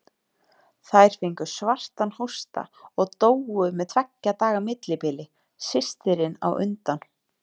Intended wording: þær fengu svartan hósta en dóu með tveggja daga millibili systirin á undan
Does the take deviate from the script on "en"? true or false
true